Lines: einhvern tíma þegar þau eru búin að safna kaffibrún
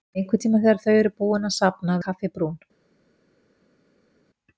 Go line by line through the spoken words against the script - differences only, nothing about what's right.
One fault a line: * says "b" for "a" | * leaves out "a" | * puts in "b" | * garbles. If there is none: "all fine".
all fine